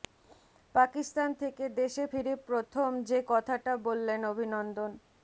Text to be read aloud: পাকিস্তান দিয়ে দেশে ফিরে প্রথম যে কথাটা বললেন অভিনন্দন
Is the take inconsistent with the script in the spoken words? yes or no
yes